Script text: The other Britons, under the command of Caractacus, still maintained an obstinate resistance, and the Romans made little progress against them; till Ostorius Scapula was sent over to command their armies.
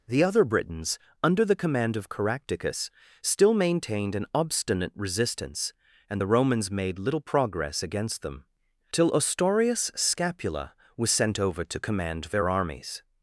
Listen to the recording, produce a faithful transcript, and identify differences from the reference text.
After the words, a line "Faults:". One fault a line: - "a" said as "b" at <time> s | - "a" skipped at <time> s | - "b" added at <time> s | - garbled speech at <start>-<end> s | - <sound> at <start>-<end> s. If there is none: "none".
The other Britons, under the command of Caractacus, still maintained an obstinate resistance, and the Romans made little progress against them; till Ostorius Scapula was sent over to command their armies.
Faults:
none